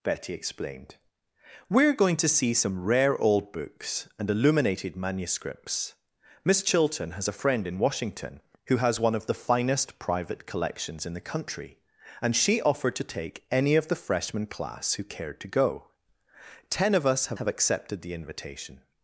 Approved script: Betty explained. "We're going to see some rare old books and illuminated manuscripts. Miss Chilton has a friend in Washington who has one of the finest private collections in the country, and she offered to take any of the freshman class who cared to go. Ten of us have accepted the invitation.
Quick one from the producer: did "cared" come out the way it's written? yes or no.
yes